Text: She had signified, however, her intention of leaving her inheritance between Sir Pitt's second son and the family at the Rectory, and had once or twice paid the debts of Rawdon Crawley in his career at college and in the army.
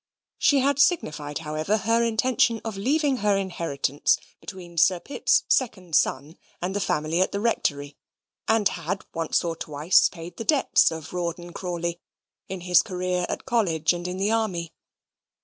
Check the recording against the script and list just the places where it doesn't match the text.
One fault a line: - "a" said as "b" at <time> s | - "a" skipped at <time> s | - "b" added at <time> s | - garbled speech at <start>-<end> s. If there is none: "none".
none